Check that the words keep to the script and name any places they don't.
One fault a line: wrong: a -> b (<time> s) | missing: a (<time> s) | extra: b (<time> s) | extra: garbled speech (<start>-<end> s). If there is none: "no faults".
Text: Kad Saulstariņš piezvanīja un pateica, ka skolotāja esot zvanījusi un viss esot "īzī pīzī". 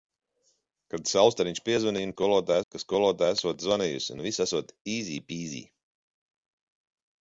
wrong: pateica -> skolotāja (2.1 s)